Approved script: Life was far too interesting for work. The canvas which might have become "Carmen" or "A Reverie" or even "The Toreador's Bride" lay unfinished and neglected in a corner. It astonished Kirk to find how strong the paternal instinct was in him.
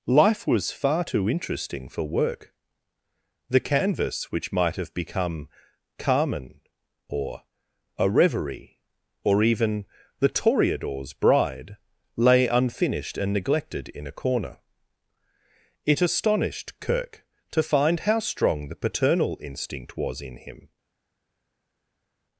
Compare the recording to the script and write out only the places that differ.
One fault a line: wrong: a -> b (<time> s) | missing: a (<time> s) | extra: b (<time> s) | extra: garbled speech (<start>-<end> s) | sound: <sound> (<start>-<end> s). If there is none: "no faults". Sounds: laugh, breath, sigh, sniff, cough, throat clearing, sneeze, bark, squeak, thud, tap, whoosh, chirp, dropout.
no faults